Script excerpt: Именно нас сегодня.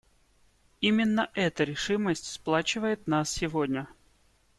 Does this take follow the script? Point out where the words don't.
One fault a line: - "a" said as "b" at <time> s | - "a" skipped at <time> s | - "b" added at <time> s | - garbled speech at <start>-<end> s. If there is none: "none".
- "эта решимость сплачивает" added at 1.4 s